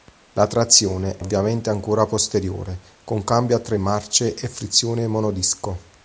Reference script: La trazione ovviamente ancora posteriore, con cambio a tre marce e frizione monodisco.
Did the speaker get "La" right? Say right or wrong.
right